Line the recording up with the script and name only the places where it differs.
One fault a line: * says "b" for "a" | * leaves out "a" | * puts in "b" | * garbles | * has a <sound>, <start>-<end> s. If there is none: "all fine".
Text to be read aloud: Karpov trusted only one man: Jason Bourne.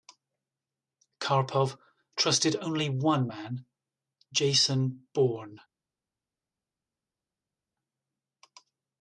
all fine